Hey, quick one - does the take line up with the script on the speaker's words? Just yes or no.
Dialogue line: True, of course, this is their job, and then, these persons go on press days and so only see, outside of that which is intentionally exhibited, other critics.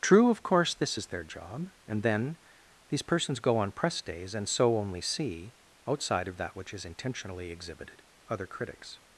yes